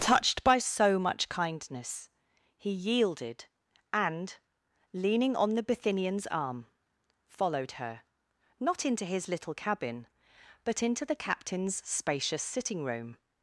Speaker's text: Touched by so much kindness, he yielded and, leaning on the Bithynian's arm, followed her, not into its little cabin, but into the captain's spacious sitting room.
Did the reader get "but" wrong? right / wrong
right